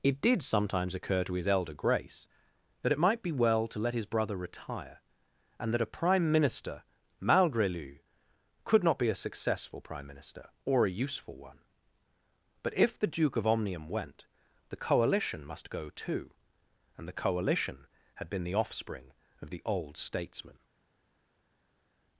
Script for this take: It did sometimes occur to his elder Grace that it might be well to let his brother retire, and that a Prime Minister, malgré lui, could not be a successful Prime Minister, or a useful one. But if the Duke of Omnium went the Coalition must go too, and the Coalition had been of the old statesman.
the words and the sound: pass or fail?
fail